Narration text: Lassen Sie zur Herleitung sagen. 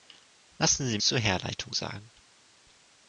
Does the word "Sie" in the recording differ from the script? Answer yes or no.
no